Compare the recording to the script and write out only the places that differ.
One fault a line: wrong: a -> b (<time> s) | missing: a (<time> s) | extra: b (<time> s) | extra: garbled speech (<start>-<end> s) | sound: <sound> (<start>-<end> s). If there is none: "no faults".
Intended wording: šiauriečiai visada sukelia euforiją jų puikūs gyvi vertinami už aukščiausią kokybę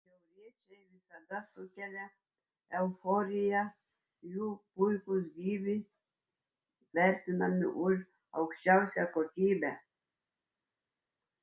no faults